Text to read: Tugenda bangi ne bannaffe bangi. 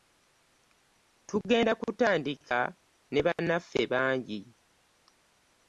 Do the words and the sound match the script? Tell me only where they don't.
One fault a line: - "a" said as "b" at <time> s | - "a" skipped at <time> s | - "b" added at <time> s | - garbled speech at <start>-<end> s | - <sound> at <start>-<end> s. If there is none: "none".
- "bangi" said as "kutandika" at 1.8 s
- dropout at 3.4-3.4 s